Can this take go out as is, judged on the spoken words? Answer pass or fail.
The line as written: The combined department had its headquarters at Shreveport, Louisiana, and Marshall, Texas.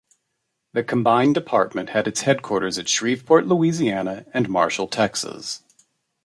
pass